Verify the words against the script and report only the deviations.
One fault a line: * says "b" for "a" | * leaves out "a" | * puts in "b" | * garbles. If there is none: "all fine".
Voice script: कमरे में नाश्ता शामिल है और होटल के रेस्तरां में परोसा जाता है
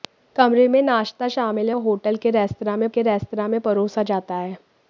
* puts in "के रेस्तरां में"